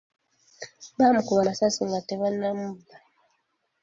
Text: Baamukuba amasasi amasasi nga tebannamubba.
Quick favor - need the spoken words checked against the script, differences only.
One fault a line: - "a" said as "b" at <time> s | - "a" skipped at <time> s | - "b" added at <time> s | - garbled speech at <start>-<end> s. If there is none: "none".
- "amasasi" skipped at 1.8 s